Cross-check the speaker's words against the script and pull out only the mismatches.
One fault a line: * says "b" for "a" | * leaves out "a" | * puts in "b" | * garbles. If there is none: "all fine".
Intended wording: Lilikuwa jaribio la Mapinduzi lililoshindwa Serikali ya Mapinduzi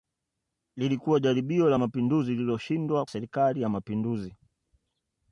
all fine